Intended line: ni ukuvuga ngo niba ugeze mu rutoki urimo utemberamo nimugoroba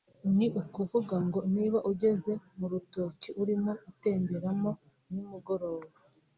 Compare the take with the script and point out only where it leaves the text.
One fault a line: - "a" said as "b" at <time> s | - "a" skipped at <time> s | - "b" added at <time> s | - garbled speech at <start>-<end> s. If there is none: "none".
none